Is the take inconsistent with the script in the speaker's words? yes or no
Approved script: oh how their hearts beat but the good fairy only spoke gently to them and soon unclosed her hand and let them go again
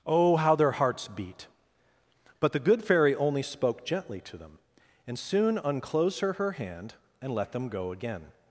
yes